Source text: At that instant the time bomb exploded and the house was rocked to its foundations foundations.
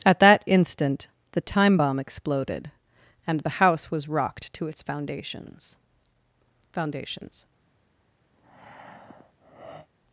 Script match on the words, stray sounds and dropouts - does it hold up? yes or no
no